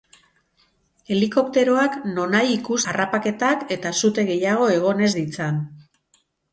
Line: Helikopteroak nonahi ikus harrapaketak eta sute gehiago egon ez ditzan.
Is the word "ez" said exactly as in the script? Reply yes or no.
yes